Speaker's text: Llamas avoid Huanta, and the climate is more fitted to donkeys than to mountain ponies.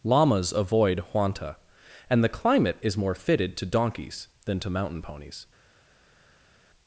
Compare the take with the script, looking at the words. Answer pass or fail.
pass